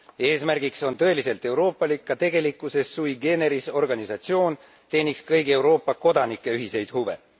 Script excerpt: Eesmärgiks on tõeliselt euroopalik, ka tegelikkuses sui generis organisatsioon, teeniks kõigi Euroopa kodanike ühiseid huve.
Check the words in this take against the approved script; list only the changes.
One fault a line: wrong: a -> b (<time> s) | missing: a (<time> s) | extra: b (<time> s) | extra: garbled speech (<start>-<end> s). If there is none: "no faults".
no faults